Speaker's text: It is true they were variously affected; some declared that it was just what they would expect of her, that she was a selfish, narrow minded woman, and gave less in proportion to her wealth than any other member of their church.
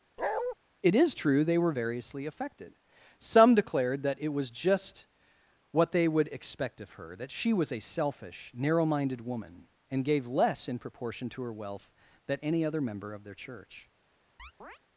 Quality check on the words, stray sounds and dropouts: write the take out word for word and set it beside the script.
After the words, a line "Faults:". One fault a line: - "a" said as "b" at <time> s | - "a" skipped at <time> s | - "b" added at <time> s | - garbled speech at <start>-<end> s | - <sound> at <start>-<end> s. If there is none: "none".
It is true they were variously affected; some declared that it was just what they would expect of her, that she was a selfish, narrow minded woman, and gave less in proportion to her wealth than any other member of their church.
Faults:
- bark at 0.2-0.5 s
- chirp at 14.4-14.8 s